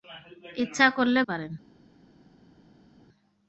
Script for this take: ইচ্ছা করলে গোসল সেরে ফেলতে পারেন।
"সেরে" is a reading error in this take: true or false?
true